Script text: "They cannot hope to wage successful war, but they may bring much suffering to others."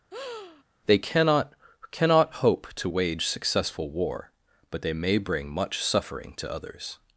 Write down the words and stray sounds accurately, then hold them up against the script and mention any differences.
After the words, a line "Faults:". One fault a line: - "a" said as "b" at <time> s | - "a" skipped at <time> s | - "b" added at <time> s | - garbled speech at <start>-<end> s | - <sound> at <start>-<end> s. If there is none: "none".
"They cannot cannot hope to wage successful war, but they may bring much suffering to others."
Faults:
- breath at 0.1-0.6 s
- "cannot" added at 1.9 s